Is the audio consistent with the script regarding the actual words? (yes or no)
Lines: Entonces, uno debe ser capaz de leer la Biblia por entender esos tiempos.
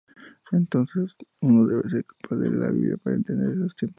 no